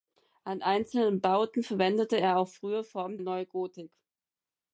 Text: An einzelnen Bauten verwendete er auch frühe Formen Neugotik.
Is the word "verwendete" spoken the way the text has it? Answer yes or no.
yes